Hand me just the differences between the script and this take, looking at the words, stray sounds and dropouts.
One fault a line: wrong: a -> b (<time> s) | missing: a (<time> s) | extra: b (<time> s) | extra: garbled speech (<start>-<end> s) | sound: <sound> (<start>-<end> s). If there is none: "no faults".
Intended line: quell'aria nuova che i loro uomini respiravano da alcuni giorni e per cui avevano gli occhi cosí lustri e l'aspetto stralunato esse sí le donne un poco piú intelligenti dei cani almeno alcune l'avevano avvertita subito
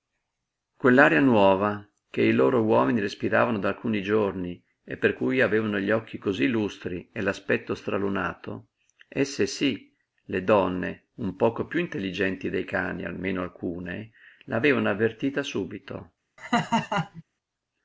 sound: laugh (16.4-17.2 s)